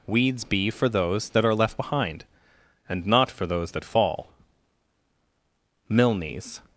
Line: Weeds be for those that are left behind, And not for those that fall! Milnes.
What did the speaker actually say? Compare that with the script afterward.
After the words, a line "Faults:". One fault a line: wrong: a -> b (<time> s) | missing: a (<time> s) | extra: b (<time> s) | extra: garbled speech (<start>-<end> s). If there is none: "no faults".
Weeds be for those that are left behind, And not for those that fall! Milnes.
Faults:
no faults